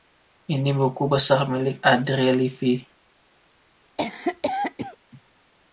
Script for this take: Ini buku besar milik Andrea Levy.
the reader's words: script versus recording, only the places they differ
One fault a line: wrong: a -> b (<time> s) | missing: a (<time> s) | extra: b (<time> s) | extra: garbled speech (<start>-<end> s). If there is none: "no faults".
no faults